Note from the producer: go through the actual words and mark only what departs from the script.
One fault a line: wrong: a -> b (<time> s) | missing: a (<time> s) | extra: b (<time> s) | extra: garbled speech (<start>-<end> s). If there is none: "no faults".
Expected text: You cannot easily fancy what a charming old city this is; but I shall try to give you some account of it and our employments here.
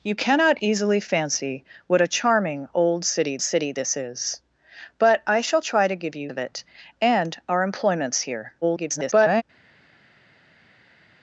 extra: city (3.4 s)
missing: some account (6.3 s)
extra: garbled speech (8.6-9.4 s)